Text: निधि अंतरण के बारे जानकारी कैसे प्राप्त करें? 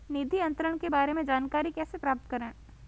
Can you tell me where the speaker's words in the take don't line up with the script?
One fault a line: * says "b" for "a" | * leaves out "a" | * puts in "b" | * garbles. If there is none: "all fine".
* puts in "में"